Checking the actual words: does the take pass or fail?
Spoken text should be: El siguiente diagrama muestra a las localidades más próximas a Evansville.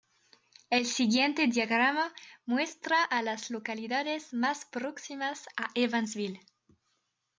pass